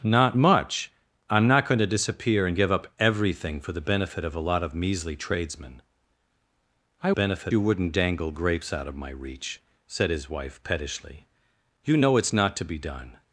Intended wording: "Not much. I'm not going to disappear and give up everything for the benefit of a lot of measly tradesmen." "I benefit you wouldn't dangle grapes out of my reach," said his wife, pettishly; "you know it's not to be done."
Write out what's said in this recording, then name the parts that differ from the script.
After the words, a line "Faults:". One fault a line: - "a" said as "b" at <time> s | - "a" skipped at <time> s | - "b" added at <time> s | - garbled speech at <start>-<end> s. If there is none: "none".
"Not much. I'm not going to disappear and give up everything for the benefit of a lot of measly tradesmen." "I benefit you wouldn't dangle grapes out of my reach," said his wife, pettishly; "you know it's not to be done."
Faults:
none